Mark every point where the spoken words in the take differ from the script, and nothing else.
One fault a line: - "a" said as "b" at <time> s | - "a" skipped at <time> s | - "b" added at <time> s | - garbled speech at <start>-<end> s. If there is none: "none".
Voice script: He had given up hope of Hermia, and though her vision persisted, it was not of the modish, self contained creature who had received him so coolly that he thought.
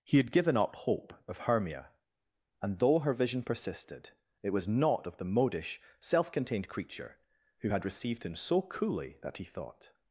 none